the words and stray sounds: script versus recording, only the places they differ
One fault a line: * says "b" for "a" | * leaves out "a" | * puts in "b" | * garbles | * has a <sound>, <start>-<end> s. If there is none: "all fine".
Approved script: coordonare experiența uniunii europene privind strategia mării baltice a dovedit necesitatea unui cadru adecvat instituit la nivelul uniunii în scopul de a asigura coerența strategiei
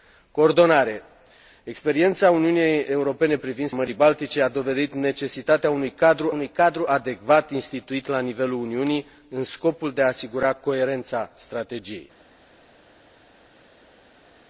* leaves out "strategia"
* puts in "unui cadru"